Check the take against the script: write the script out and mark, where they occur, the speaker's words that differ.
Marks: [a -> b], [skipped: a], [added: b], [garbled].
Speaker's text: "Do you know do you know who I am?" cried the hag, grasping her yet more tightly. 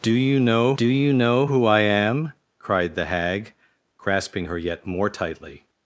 "Do you know do you know who I am?" cried the hag, grasping her yet more tightly.